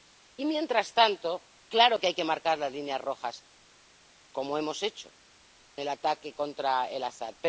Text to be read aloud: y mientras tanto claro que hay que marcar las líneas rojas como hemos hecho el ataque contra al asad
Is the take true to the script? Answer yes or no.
yes